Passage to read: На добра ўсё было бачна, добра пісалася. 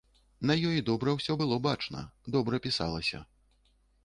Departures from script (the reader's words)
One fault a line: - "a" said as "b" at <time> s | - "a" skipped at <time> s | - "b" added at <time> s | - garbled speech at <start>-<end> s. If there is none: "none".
- "ёй" added at 0.7 s